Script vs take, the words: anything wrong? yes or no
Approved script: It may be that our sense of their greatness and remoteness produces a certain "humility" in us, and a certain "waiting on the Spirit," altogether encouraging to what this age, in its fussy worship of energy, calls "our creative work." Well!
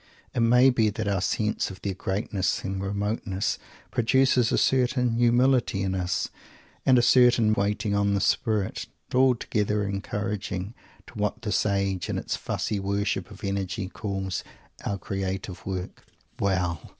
no